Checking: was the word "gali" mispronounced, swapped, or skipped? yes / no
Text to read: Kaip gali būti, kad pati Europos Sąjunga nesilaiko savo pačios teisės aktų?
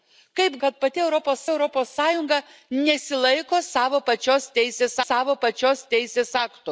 yes